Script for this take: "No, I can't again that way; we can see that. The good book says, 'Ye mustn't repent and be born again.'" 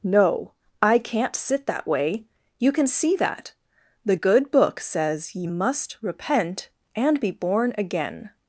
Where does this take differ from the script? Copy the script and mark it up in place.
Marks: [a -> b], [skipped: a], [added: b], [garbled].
"No, I can't [again -> sit] that way; [we -> you] can see that. The good book says, 'Ye [mustn't -> must] repent and be born again.'"